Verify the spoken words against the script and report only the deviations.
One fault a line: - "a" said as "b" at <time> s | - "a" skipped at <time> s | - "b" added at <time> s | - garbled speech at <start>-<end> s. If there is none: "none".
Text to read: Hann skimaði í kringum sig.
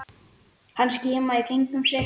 none